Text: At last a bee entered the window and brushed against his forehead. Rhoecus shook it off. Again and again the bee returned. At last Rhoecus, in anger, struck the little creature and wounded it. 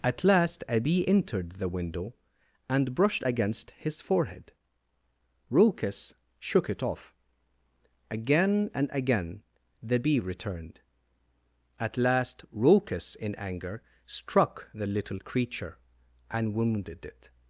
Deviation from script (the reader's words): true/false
false